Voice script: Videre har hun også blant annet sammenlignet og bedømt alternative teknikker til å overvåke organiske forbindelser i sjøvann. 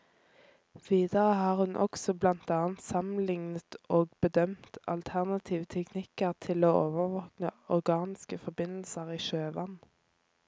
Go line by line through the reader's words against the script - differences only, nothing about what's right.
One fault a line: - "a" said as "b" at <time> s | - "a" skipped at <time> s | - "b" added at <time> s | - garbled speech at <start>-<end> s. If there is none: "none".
none